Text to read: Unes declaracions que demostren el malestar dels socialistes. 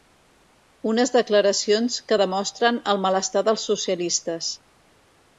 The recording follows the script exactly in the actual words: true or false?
true